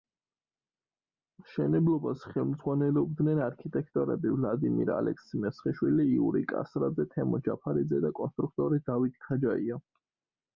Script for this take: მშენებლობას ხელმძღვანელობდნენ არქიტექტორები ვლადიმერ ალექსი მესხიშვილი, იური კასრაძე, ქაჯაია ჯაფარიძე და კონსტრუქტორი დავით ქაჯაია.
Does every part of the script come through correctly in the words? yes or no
no